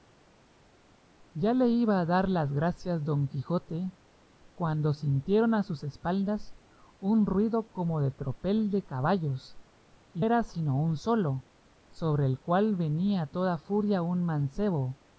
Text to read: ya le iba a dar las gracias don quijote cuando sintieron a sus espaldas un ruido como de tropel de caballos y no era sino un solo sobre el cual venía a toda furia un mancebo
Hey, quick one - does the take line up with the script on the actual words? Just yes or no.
no